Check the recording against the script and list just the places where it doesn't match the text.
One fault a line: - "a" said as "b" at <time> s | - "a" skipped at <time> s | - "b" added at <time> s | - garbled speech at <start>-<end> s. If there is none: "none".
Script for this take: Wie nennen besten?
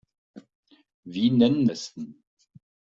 none